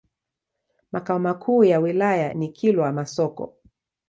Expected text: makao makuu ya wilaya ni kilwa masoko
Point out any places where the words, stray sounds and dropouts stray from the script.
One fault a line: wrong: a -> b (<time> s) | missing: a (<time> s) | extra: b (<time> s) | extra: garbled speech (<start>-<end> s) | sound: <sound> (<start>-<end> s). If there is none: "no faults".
no faults